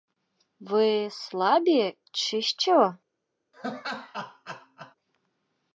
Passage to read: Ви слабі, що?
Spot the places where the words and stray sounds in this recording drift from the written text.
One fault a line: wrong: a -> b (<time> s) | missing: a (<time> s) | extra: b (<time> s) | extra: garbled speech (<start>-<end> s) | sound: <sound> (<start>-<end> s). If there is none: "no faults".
extra: чи (2.1 s)
sound: laugh (3.5-5.0 s)